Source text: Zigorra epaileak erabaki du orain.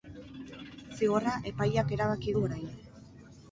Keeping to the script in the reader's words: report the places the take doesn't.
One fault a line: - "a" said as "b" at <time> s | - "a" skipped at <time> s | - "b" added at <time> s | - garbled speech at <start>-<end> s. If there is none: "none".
none